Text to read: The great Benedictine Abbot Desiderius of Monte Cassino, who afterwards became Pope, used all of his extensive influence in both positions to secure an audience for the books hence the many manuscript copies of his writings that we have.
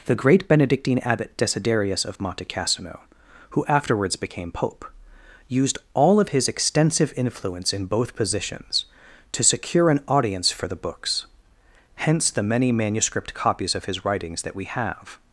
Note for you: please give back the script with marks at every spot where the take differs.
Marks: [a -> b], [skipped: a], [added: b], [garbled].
The great Benedictine Abbot Desiderius of Monte Cassino, who afterwards became Pope, used all of his extensive influence in both positions to secure an audience for the books hence the many manuscript copies of his writings that we have.